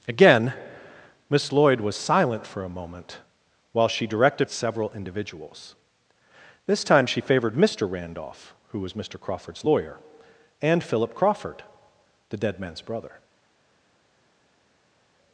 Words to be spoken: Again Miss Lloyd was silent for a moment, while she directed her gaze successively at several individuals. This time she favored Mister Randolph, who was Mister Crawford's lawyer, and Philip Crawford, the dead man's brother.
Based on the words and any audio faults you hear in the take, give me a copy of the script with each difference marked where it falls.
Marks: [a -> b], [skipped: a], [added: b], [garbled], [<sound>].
Again Miss Lloyd was silent for a moment, while she directed [skipped: her gaze successively] at several individuals. This time she favored Mister Randolph, who was Mister Crawford's lawyer, and Philip Crawford, the dead man's brother.